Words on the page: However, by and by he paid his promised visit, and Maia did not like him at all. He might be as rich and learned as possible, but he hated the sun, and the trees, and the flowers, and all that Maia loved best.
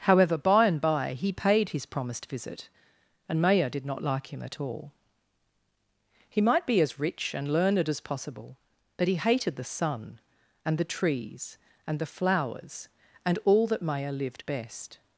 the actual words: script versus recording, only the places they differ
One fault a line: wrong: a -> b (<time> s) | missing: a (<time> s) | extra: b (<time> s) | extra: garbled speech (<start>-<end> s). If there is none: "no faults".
wrong: loved -> lived (14.1 s)